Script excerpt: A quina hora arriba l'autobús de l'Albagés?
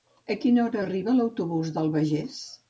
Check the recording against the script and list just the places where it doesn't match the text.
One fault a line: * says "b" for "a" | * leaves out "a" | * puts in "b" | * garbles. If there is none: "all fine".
all fine